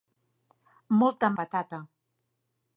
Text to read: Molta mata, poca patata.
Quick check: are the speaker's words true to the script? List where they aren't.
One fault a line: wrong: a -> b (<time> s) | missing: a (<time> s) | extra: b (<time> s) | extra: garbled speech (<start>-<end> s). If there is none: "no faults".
missing: mata poca (1.3 s)